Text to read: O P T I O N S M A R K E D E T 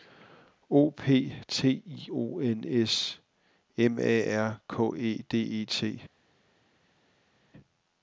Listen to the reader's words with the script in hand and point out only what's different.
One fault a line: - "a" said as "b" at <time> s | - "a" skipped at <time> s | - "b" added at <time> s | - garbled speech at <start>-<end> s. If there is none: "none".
none